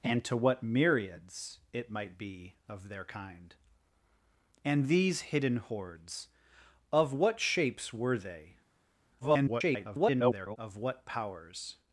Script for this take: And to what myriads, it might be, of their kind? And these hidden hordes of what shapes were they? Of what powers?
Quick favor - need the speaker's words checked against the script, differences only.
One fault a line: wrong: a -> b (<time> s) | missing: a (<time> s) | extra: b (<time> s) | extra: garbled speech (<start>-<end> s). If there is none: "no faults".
extra: garbled speech (9.2-10.6 s)